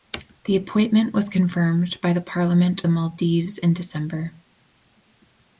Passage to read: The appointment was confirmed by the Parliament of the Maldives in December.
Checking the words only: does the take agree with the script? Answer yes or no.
no